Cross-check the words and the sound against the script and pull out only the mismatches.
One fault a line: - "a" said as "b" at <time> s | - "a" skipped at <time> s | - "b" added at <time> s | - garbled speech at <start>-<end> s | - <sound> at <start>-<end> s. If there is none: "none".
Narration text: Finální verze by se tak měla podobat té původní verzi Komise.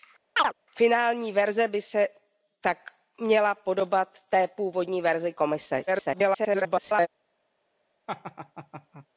- chirp at 0.4-0.5 s
- garbled speech at 5.9-7.1 s
- laugh at 8.1-9.1 s